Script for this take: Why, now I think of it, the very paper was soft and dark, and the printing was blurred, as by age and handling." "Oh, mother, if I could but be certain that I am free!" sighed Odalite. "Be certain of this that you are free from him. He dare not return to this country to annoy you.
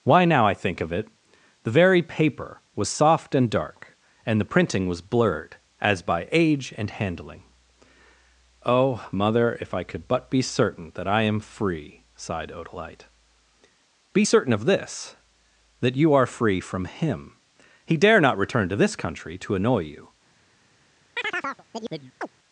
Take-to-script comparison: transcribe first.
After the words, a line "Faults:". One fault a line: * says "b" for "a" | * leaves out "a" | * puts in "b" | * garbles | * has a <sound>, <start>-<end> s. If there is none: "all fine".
Why, now I think of it, the very paper was soft and dark, and the printing was blurred, as by age and handling." "Oh, mother, if I could but be certain that I am free!" sighed Odalite. "Be certain of this that you are free from him. He dare not return to this country to annoy you.
Faults:
* has a chirp, 21.2-22.3 s